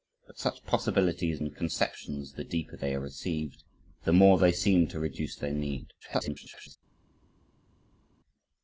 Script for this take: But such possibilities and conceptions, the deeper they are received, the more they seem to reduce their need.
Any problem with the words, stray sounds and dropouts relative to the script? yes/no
yes